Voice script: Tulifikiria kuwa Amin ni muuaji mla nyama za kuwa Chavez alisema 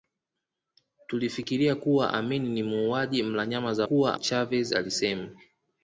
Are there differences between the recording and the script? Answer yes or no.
no